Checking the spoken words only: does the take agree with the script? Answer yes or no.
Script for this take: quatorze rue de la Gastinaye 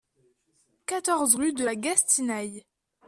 yes